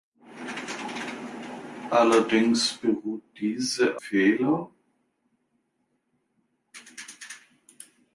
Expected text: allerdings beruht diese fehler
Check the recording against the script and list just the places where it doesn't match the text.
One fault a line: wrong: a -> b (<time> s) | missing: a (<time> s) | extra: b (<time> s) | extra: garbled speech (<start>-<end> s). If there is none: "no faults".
no faults